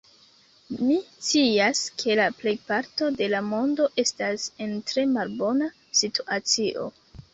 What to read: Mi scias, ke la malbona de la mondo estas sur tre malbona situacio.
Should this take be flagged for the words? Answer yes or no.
yes